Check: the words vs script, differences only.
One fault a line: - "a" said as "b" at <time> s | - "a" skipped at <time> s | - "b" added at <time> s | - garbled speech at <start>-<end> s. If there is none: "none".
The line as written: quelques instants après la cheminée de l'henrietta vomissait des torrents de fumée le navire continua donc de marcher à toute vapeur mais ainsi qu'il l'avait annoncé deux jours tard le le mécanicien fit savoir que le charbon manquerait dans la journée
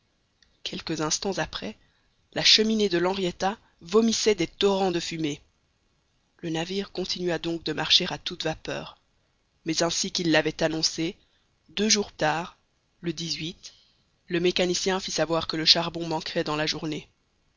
none